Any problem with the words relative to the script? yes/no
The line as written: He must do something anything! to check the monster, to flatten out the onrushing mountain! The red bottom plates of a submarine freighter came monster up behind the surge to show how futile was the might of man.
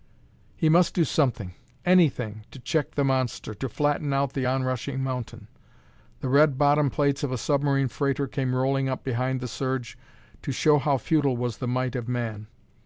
yes